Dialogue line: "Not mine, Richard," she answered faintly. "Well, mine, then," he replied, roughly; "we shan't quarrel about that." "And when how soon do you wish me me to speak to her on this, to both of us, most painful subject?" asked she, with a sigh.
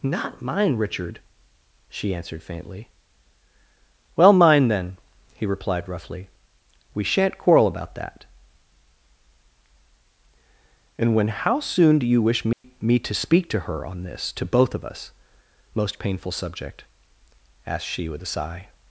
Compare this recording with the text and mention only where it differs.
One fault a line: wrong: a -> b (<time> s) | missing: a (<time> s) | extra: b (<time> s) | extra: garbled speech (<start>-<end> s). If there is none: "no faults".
no faults